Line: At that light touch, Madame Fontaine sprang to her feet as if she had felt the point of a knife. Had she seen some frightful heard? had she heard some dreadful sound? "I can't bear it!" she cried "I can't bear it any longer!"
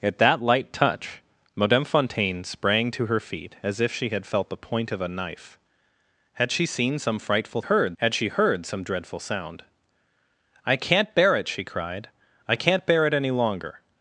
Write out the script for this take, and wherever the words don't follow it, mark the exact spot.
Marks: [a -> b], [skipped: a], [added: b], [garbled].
At that light touch, Madame Fontaine sprang to her feet as if she had felt the point of a knife. Had she seen some frightful heard? had she heard some dreadful sound? "I can't bear it!" she cried "I can't bear it any longer!"